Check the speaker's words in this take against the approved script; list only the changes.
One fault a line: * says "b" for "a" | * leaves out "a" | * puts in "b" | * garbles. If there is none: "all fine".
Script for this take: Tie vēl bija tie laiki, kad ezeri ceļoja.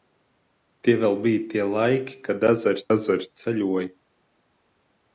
* puts in "ezeri"